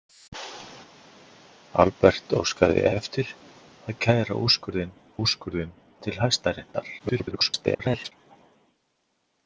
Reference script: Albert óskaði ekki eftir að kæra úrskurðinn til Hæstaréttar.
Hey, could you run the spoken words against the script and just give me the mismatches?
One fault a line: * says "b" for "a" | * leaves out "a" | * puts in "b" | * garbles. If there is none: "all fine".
* leaves out "ekki"
* puts in "úrskurðinn"
* garbles